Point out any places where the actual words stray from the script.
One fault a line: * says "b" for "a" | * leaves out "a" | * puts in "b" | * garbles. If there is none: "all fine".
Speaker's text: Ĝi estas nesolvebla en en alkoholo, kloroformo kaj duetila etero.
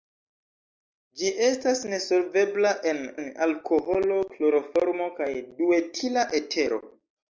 all fine